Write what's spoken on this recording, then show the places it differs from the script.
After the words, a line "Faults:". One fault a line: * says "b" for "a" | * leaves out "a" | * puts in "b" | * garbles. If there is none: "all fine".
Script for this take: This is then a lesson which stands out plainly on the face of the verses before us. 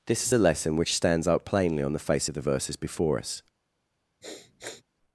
This is a lesson which stands out plainly on the face of the verses before us.
Faults:
* leaves out "then"